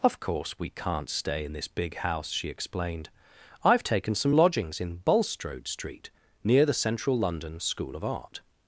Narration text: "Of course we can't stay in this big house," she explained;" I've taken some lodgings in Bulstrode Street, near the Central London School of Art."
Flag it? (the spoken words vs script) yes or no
no